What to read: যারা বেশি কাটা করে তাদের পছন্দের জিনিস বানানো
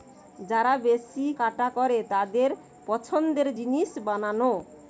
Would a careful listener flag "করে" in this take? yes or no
no